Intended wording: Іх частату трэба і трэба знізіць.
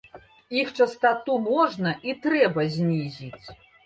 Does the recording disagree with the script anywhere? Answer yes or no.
yes